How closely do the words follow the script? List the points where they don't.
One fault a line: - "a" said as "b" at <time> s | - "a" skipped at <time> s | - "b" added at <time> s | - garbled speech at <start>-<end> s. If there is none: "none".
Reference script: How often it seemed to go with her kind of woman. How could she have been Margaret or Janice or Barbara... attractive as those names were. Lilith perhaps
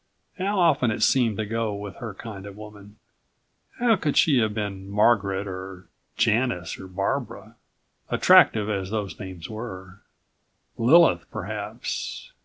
none